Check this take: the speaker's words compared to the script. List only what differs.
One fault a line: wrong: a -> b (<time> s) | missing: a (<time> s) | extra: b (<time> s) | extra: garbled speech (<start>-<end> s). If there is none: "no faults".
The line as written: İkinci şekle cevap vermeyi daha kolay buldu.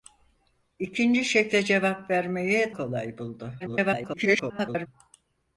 missing: daha (2.7 s)
extra: garbled speech (3.6-4.9 s)